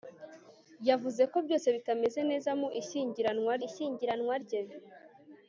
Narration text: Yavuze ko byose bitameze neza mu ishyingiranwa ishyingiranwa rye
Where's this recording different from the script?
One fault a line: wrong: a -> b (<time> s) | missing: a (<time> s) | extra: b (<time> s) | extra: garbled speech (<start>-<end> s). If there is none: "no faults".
no faults